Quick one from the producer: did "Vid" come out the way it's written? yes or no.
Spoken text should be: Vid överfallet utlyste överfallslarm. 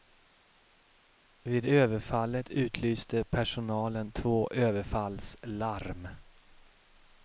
yes